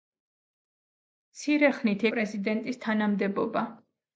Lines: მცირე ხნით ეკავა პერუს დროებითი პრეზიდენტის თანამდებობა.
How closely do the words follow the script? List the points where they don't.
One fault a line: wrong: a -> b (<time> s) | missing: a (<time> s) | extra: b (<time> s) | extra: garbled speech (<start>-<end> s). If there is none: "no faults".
missing: ეკავა პერუს დროებითი (2.1 s)